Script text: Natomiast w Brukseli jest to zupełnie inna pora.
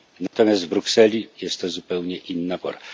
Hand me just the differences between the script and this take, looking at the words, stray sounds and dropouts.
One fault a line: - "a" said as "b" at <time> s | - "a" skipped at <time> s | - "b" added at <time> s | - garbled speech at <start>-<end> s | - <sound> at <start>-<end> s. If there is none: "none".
- dropout at 0.3-0.3 s